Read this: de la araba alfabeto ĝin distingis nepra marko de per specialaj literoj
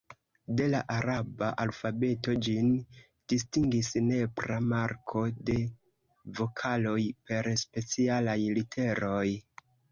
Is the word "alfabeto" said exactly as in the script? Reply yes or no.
yes